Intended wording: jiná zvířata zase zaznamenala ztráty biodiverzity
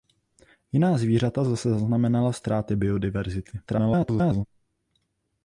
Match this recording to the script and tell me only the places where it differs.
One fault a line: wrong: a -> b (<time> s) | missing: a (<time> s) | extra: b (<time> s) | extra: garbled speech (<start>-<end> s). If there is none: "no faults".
extra: garbled speech (3.7-4.5 s)